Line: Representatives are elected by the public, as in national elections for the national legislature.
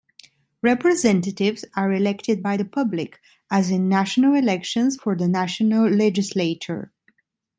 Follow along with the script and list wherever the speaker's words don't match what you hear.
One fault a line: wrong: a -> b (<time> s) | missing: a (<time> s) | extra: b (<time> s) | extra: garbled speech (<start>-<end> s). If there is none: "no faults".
no faults